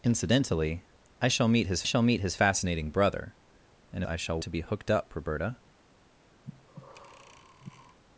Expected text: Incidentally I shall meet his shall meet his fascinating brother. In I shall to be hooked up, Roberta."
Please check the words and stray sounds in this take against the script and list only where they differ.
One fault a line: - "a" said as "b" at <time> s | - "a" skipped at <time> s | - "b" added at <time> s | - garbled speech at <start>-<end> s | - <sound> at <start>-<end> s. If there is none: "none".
- breath at 6.4-8.0 s